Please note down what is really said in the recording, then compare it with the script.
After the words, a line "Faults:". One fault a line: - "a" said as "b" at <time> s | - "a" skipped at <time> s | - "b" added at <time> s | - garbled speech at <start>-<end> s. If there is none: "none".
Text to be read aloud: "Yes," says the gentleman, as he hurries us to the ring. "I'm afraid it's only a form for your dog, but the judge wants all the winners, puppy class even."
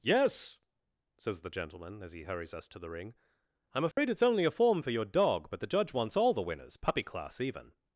"Yes," says the gentleman, as he hurries us to the ring. "I'm afraid it's only a form for your dog, but the judge wants all the winners, puppy class even."
Faults:
none